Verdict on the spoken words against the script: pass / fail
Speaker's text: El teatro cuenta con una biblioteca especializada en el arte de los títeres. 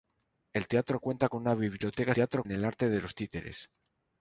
fail